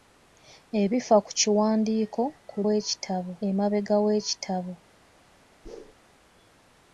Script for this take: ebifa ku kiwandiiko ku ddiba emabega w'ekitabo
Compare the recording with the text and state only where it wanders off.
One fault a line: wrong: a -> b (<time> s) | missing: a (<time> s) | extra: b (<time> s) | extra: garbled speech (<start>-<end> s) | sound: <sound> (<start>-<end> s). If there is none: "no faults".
wrong: ddiba -> w'ekitabo (2.6 s)
sound: whoosh (5.6-5.9 s)